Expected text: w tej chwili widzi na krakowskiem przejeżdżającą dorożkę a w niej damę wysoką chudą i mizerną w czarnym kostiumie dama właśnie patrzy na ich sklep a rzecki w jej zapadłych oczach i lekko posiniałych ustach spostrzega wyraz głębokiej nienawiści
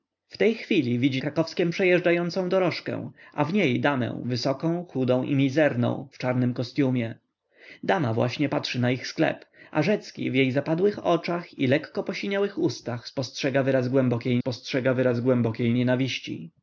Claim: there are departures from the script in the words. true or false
true